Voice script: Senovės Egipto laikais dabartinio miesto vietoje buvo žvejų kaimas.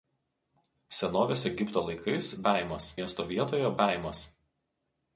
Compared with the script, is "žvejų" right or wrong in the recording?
wrong